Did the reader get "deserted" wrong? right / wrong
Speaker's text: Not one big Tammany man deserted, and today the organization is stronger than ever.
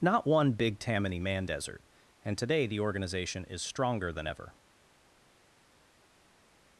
wrong